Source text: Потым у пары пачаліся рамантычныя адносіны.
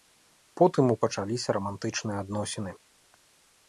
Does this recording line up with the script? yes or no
no